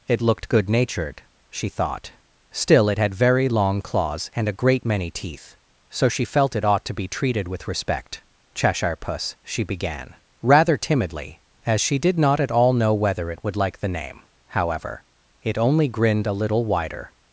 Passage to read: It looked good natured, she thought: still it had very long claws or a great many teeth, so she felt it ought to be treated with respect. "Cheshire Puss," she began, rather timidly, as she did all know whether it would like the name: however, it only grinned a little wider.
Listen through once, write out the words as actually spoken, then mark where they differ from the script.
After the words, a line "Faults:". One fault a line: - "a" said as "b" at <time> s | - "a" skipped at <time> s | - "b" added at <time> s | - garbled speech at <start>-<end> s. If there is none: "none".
It looked good natured, she thought: still it had very long claws and a great many teeth, so she felt it ought to be treated with respect. "Cheshire Puss," she began, rather timidly, as she did not at all know whether it would like the name: however, it only grinned a little wider.
Faults:
- "or" said as "and" at 4.3 s
- "not at" added at 12.2 s